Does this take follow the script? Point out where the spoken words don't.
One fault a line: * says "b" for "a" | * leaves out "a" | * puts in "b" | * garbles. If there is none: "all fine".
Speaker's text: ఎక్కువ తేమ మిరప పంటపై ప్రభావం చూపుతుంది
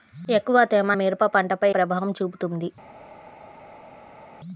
all fine